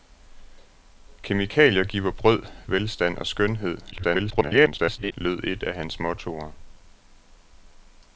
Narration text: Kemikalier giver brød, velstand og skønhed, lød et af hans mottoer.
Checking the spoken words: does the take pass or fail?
fail